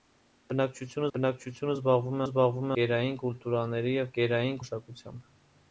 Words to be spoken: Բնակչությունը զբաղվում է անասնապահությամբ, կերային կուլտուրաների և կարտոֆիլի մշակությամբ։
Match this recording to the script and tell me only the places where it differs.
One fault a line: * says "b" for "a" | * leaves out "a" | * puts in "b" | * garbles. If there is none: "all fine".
* puts in "բնակչությունը"
* says "զբաղվում" for "անասնապահությամբ"
* says "կերային" for "կարտոֆիլի"